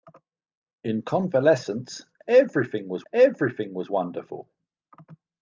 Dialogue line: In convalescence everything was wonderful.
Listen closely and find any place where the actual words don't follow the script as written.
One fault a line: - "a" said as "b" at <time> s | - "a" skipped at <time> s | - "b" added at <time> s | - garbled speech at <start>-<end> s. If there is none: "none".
- "everything was" added at 3.1 s